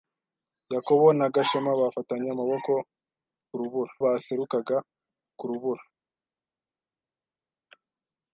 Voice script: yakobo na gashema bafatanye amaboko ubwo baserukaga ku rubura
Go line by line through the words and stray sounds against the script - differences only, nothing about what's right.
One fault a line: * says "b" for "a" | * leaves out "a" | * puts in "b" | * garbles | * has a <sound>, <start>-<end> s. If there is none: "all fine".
* says "rubura" for "ubwo"